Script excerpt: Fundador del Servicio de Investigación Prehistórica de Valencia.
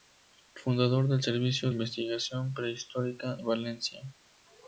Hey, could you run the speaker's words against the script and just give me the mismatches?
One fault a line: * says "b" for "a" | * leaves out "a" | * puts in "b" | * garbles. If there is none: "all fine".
* leaves out "de"
* leaves out "de"